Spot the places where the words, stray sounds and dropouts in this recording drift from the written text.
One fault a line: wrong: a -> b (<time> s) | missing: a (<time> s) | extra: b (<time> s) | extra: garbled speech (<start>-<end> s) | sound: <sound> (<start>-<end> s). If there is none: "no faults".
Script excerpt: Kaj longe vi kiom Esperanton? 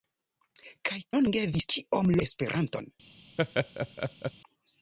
sound: laugh (3.4-4.3 s)